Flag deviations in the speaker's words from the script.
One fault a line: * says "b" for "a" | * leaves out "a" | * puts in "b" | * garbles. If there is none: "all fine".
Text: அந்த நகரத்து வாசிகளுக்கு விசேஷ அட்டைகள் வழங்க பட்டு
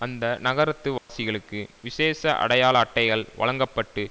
* puts in "அடையாள"